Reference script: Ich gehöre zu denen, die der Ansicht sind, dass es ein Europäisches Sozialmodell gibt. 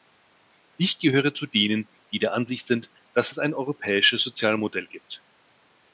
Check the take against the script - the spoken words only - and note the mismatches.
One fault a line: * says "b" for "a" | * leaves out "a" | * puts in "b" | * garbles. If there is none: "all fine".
all fine